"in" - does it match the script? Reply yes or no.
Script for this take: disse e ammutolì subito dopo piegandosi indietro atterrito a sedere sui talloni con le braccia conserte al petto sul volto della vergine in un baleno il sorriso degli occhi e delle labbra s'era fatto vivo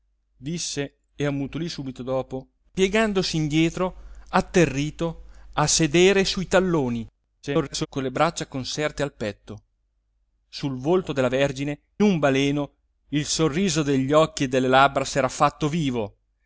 no